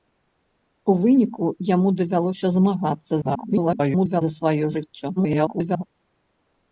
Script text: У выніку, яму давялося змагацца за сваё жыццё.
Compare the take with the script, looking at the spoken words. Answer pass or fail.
fail